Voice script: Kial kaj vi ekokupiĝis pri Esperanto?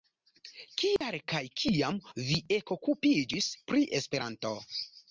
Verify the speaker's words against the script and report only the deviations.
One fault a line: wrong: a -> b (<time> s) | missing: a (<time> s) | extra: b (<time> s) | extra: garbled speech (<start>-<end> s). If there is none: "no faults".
extra: kiam (1.6 s)